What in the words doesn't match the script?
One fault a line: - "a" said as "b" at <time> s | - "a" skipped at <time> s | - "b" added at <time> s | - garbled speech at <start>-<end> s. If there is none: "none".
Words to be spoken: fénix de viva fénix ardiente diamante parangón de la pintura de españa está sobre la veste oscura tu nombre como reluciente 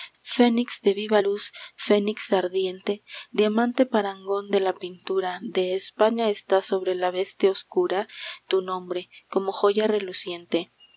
- "luz" added at 1.2 s
- "joya" added at 9.5 s